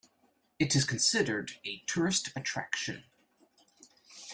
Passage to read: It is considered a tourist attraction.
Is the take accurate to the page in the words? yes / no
yes